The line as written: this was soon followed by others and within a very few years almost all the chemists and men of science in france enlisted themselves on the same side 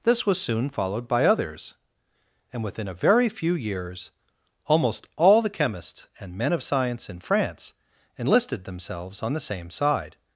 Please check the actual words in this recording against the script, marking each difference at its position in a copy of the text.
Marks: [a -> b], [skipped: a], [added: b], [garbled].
this was soon followed by others and within a very few years almost all the chemists and men of science in france enlisted themselves on the same side